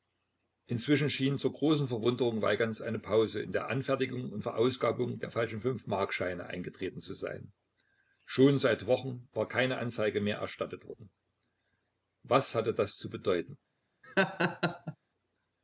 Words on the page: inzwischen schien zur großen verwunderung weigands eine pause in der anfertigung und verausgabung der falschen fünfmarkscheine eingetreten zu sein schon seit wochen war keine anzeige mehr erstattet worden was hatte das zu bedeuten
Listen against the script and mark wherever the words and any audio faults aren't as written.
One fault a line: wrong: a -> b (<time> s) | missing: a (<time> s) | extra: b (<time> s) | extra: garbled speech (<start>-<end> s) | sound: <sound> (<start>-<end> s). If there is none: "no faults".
sound: laugh (14.0-15.0 s)